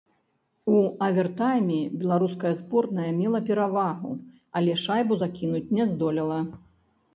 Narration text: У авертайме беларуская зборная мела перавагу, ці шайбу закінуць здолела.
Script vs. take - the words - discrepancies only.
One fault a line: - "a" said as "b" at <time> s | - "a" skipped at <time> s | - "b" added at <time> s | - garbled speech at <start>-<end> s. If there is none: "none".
- "ці" said as "але" at 4.6 s
- "не" added at 5.8 s